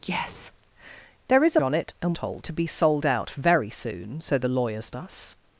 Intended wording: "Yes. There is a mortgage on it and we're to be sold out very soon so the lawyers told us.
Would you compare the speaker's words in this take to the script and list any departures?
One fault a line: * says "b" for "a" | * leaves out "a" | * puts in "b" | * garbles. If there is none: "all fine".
* leaves out "mortgage"
* says "told" for "we're"
* leaves out "told"